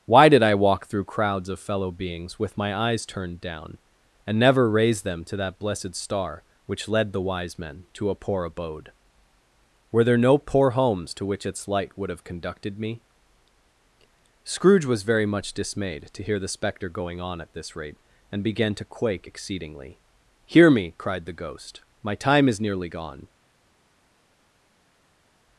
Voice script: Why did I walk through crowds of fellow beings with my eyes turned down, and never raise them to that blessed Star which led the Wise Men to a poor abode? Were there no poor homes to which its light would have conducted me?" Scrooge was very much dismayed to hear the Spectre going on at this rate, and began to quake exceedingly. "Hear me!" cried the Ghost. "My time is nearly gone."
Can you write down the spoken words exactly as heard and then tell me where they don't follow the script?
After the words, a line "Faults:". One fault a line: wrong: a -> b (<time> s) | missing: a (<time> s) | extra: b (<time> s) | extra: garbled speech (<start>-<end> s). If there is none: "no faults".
Why did I walk through crowds of fellow beings with my eyes turned down, and never raise them to that blessed Star which led the Wise Men to a poor abode? Were there no poor homes to which its light would have conducted me?" Scrooge was very much dismayed to hear the Spectre going on at this rate, and began to quake exceedingly. "Hear me!" cried the Ghost. "My time is nearly gone."
Faults:
no faults